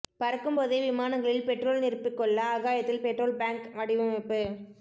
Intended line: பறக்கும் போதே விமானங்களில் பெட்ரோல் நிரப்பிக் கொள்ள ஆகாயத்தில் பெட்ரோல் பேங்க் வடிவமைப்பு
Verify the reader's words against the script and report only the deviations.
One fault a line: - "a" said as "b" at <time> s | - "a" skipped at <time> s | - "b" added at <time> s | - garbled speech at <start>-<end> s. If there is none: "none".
none